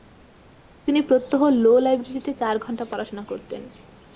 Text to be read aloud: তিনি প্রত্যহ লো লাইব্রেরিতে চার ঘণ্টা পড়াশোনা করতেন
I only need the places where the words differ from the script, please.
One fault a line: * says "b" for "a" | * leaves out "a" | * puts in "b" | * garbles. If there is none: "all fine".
all fine